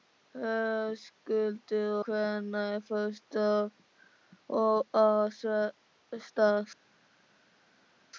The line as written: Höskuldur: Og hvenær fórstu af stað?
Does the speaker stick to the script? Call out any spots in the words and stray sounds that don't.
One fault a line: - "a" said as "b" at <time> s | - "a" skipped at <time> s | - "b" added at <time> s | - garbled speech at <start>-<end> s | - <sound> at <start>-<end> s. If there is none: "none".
- "Og" skipped at 1.9 s